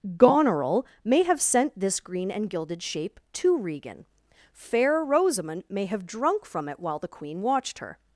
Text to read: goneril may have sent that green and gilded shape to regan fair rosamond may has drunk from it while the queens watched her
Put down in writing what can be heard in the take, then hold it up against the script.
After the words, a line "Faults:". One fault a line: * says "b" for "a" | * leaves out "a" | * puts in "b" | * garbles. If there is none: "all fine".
goneril may have sent this green and gilded shape to regan fair rosamond may have drunk from it while the queen watched her
Faults:
* says "this" for "that"
* says "have" for "has"
* says "queen" for "queens"